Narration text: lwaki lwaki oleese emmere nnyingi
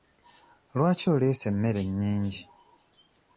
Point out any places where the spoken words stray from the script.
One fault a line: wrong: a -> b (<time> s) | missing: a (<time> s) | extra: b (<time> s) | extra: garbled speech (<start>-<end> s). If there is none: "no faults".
missing: lwaki (1.1 s)